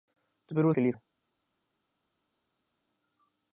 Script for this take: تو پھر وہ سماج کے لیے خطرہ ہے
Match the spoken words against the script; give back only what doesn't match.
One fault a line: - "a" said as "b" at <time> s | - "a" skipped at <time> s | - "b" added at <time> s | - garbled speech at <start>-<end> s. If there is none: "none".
- "سماج" skipped at 0.7 s
- "خطرہ" skipped at 0.9 s